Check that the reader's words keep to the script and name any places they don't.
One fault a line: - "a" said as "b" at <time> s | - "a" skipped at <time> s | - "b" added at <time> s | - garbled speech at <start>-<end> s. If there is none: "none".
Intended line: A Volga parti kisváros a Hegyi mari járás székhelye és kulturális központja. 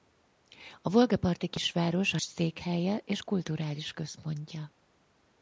- "Hegyi mari járás" skipped at 2.2 s